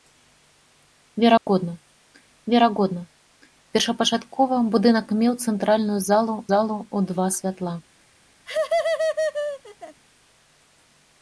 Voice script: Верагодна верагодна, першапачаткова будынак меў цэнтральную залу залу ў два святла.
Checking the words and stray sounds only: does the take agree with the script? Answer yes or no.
no